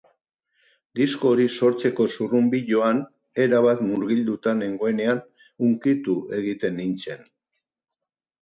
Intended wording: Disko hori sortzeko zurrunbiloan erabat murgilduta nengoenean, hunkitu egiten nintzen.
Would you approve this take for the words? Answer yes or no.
yes